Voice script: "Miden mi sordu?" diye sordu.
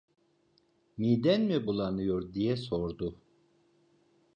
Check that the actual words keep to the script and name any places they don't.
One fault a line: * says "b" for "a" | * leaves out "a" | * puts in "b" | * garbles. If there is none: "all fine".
* says "bulanıyor" for "sordu"